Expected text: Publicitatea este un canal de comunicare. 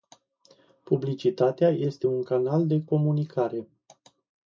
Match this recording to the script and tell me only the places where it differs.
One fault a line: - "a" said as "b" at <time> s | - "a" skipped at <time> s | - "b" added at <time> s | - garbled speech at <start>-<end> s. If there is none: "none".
none